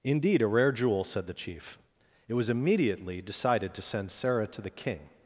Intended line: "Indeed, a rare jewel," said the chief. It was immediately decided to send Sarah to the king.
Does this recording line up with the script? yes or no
yes